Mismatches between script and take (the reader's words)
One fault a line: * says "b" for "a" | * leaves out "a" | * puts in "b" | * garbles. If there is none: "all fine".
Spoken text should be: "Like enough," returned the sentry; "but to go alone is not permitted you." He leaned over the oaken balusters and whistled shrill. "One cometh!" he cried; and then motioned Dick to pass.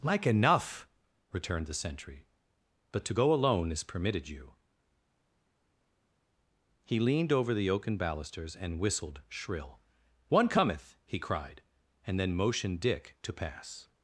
* leaves out "not"